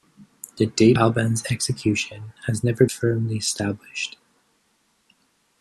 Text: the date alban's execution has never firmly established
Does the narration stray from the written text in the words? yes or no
no